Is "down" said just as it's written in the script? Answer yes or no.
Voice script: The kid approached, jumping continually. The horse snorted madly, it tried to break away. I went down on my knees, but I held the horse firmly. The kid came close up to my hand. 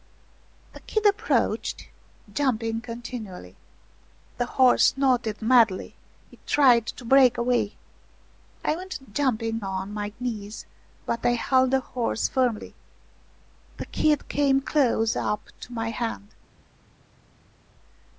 no